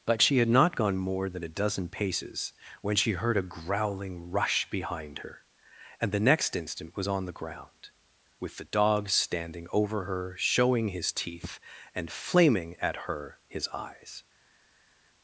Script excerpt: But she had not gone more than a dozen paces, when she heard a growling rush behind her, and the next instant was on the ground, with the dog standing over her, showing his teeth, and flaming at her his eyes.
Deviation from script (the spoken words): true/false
false